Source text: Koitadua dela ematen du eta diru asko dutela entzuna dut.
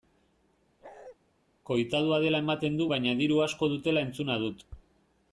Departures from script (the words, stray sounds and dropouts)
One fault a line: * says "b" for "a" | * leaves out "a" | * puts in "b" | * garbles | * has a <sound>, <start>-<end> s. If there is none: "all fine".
* has a bark, 0.8-1.2 s
* says "baina" for "eta"